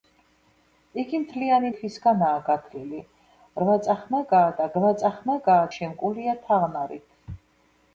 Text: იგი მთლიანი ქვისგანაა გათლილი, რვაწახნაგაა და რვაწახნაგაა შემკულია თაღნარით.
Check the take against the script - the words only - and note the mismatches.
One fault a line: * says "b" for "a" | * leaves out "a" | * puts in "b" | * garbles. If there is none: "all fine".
all fine